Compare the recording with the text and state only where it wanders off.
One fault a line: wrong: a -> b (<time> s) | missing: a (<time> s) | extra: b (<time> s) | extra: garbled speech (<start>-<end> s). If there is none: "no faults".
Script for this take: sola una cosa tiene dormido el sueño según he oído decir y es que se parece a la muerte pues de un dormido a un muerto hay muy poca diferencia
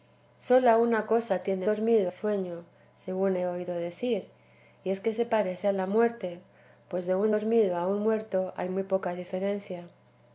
no faults